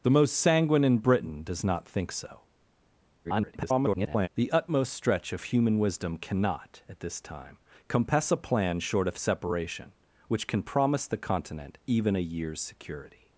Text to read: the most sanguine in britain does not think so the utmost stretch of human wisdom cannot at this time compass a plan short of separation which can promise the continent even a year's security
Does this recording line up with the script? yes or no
no